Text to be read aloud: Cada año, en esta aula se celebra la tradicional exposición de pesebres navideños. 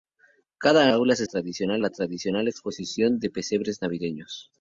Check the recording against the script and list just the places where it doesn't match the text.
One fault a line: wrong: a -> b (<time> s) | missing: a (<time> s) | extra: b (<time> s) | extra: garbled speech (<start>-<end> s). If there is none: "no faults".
missing: año en esta (0.9 s)
wrong: celebra -> tradicional (1.2 s)